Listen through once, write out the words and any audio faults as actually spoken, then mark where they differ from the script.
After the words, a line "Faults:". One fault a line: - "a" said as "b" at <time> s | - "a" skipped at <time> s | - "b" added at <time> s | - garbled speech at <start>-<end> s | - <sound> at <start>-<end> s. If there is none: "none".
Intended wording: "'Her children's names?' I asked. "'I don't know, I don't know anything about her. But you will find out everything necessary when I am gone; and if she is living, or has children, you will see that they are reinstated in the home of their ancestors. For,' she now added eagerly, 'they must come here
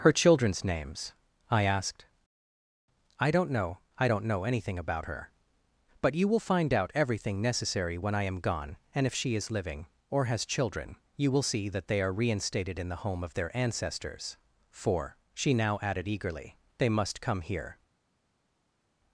"'Her children's names?' I asked. "'I don't know, I don't know anything about her. But you will find out everything necessary when I am gone; and if she is living, or has children, you will see that they are reinstated in the home of their ancestors. For,' she now added eagerly, 'they must come here
Faults:
none